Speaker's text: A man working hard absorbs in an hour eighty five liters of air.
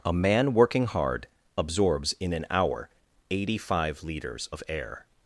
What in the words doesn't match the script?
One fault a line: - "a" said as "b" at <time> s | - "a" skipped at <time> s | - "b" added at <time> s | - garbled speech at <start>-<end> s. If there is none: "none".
none